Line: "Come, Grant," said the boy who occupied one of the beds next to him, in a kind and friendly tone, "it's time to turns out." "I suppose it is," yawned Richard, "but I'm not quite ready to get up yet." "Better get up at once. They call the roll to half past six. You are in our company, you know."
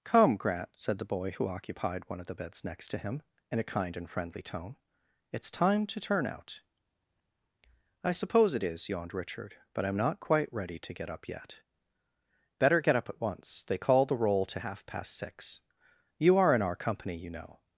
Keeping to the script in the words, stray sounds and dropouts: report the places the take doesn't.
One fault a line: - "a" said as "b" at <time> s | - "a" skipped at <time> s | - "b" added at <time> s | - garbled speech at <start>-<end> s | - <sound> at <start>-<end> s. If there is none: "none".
- "turns" said as "turn" at 6.0 s